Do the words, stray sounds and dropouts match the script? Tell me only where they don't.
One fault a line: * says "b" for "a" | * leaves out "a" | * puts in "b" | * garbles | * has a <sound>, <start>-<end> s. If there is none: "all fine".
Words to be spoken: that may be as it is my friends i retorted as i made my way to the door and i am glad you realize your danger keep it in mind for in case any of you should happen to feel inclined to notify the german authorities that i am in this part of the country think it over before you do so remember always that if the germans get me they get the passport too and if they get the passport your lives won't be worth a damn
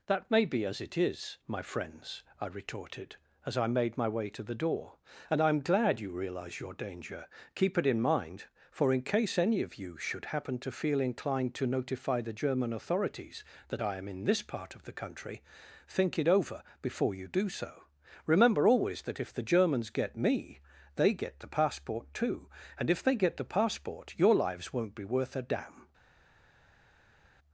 all fine